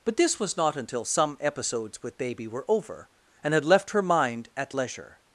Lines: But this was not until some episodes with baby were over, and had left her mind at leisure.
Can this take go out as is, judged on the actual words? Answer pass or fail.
pass